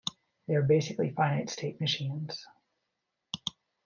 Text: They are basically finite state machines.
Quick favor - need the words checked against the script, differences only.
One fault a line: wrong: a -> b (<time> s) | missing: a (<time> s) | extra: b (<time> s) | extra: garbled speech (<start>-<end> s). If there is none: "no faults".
no faults